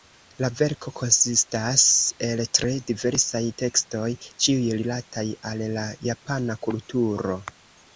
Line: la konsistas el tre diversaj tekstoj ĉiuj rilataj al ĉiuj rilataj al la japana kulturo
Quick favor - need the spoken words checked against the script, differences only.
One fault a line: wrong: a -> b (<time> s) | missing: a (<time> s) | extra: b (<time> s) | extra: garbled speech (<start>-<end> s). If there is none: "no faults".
extra: verko (0.6 s)
missing: ĉiuj rilataj al (5.7 s)